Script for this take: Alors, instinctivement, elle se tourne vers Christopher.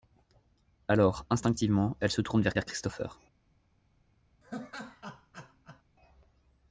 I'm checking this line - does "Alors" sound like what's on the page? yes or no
yes